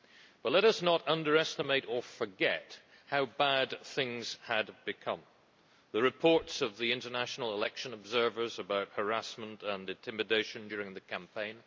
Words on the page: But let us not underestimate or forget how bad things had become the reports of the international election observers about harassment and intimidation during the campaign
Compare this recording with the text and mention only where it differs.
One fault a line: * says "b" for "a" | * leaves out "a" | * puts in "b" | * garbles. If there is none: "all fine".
all fine